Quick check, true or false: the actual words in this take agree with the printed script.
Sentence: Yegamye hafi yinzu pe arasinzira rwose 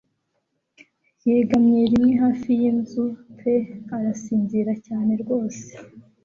false